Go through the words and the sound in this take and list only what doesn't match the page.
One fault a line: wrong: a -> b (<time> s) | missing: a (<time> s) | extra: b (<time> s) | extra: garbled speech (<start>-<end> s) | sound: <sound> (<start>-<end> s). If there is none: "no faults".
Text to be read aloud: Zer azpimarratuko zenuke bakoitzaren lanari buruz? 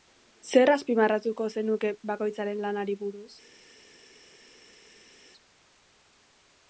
no faults